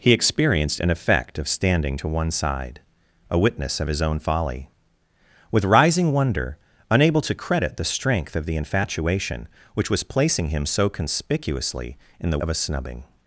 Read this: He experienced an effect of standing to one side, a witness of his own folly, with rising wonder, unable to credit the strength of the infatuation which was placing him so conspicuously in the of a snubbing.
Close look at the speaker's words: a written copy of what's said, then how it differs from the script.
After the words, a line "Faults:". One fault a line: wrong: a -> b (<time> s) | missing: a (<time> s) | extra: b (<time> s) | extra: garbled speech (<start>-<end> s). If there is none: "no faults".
He experienced an effect of standing to one side, a witness of his own folly, with rising wonder, unable to credit the strength of the infatuation which was placing him so conspicuously in the of a snubbing.
Faults:
no faults